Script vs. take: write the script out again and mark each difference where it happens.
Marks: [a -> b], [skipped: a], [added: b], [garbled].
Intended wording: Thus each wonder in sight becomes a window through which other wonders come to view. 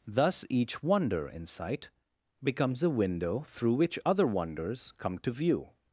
Thus each wonder in sight becomes a window through which other wonders come to view.